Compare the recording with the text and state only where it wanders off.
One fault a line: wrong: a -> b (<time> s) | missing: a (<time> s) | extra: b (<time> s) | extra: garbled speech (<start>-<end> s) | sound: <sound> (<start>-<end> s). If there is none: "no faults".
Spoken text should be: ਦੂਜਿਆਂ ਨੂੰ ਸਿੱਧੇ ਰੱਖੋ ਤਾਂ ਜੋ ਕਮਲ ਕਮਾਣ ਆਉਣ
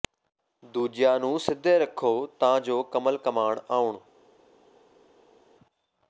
no faults